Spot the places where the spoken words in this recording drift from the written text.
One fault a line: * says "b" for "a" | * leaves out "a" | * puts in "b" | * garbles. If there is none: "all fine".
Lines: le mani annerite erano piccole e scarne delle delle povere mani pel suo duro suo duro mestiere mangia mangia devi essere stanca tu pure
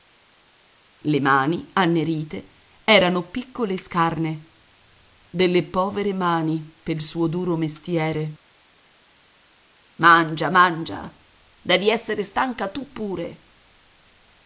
* leaves out "delle"
* leaves out "suo duro"